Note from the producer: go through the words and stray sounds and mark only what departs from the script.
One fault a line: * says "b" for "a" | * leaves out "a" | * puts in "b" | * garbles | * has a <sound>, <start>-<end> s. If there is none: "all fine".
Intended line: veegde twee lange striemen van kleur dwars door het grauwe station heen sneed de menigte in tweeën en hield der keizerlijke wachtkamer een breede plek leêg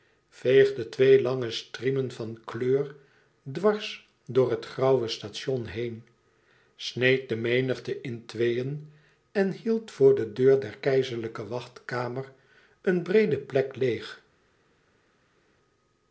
* puts in "voor de deur"